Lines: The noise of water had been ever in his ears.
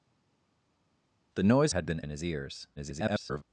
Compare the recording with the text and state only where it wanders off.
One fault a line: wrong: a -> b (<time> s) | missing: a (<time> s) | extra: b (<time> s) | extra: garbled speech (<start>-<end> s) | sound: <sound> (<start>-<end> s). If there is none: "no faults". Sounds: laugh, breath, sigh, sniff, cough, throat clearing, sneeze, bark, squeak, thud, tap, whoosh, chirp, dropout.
missing: of water (1.7 s)
missing: ever (2.0 s)
extra: garbled speech (2.8-3.4 s)